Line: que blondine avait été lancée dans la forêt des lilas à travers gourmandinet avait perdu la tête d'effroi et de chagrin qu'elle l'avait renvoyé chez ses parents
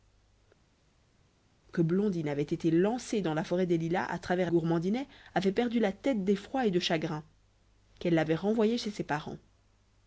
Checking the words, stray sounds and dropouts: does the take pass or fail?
pass